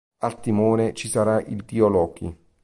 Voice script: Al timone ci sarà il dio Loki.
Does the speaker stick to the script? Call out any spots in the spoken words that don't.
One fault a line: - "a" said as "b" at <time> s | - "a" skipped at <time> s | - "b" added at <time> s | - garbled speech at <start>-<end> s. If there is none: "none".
none